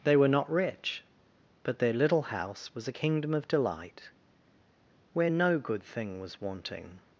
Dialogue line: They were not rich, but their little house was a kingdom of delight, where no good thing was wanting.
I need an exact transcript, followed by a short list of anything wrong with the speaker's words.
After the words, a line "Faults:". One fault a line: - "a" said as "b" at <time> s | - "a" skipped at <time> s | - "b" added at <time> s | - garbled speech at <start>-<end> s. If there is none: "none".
They were not rich, but their little house was a kingdom of delight, where no good thing was wanting.
Faults:
none